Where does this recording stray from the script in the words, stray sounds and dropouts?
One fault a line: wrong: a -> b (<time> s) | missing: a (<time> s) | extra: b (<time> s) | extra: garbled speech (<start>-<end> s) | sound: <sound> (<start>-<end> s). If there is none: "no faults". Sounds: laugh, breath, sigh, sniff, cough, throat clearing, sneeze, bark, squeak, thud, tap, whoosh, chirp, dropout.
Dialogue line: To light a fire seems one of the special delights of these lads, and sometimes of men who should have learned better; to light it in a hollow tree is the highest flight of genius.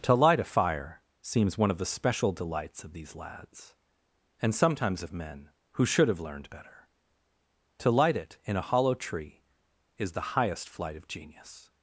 no faults